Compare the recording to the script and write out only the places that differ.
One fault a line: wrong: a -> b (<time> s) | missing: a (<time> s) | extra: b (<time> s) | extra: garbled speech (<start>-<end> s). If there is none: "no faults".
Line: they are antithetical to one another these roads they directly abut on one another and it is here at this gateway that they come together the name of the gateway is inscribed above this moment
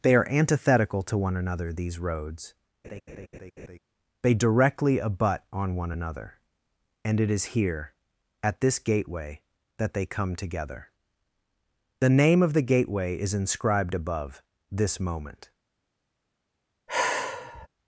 no faults